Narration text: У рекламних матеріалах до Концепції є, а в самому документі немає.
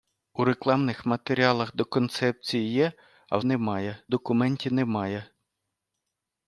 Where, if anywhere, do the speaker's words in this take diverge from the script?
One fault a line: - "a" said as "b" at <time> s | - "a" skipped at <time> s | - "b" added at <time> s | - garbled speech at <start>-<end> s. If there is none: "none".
- "самому" said as "немає" at 3.4 s